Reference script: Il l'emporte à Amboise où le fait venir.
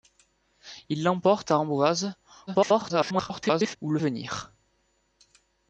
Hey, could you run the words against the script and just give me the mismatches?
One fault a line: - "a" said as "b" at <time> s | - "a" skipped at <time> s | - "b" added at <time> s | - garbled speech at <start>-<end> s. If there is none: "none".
- garbled speech at 2.5-3.8 s
- "fait" skipped at 4.0 s